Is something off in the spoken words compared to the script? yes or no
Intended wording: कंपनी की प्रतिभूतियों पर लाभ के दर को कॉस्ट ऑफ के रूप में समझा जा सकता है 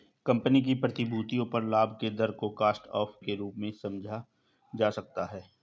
no